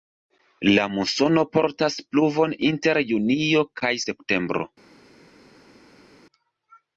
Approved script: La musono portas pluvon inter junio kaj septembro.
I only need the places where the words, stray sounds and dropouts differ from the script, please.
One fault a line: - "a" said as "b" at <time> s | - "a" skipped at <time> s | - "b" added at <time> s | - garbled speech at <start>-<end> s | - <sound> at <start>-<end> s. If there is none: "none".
none